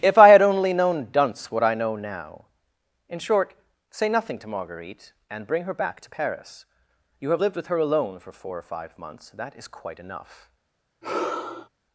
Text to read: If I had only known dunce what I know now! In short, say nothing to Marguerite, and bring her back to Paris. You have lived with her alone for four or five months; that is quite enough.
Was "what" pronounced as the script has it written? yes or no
yes